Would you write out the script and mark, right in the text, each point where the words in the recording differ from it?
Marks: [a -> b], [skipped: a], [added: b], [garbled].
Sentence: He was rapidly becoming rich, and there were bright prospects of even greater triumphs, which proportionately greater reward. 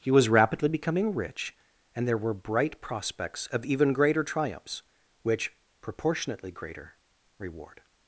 He was rapidly becoming rich, and there were bright prospects of even greater triumphs, which proportionately greater reward.